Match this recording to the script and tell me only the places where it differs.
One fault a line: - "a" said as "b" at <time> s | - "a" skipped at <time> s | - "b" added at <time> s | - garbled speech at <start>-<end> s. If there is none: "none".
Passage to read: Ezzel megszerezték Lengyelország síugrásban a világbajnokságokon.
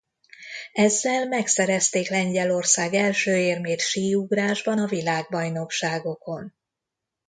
- "első érmét" added at 2.9 s